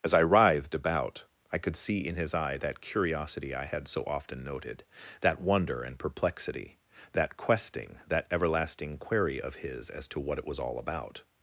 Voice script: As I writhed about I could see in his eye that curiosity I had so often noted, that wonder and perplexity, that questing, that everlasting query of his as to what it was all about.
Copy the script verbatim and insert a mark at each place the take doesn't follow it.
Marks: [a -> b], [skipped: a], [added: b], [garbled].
As I writhed about I could see in his eye that curiosity I had so often noted, that wonder and perplexity, that questing, that everlasting query of his as to what it was all about.